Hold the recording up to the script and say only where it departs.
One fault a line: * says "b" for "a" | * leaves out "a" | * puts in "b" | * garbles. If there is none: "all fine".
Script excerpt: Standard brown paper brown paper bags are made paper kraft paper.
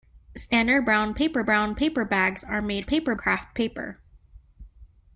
all fine